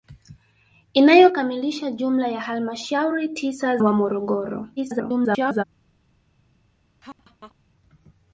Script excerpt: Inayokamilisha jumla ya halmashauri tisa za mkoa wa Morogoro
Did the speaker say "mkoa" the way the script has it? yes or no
no